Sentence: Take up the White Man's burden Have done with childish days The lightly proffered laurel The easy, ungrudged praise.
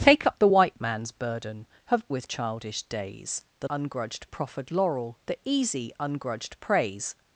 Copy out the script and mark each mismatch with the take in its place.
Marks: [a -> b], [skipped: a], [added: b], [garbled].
Take up the White Man's burden Have [skipped: done] with childish days The [lightly -> ungrudged] proffered laurel The easy, ungrudged praise.